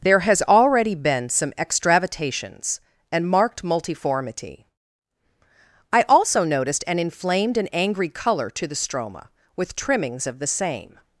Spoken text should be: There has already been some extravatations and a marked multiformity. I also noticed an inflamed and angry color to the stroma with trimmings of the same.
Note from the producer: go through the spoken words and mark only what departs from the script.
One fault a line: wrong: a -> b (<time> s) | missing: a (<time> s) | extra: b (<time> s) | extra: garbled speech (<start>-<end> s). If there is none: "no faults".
missing: a (3.3 s)